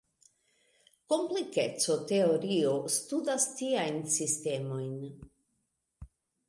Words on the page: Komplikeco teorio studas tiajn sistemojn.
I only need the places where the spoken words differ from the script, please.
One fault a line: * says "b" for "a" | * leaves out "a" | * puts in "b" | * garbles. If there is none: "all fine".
all fine